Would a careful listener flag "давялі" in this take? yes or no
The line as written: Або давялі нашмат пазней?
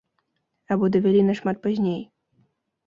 no